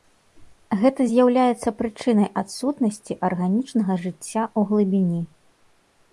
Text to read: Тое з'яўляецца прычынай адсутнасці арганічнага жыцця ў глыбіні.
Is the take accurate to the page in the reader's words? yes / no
no